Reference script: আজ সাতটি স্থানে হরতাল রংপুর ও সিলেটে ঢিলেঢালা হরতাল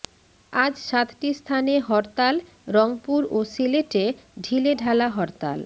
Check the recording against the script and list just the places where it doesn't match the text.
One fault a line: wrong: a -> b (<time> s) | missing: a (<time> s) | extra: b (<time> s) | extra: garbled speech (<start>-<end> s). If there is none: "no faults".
no faults